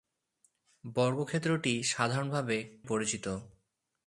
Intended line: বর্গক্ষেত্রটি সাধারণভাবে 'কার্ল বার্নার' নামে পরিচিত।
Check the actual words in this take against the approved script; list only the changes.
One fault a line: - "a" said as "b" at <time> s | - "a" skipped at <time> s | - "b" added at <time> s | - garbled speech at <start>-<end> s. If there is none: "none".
- "কার্ল বার্নার নামে" skipped at 2.6 s